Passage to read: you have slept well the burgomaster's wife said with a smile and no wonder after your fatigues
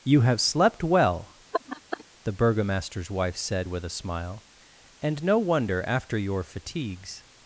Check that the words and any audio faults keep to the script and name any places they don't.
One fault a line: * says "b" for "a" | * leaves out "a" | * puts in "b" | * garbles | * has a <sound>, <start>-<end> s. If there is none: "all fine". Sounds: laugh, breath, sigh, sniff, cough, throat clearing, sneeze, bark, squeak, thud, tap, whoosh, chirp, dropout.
* has a laugh, 1.5-2.0 s